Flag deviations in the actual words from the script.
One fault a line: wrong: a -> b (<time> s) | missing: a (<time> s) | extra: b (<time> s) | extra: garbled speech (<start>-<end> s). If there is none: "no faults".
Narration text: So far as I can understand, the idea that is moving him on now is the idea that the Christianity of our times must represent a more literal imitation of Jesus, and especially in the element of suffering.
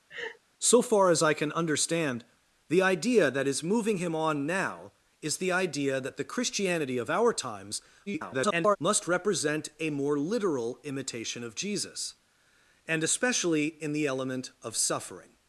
extra: garbled speech (8.1-8.8 s)